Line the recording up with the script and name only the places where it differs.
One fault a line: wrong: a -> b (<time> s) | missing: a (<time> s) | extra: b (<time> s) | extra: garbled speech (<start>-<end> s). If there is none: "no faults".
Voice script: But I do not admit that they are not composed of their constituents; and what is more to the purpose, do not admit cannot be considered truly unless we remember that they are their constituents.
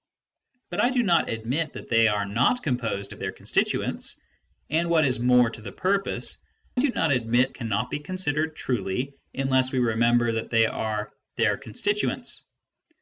no faults